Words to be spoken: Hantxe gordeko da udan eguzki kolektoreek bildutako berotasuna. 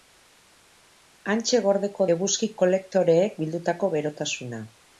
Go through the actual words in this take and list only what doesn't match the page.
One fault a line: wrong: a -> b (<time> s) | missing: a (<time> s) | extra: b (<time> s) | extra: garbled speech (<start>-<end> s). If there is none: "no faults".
missing: da udan (2.1 s)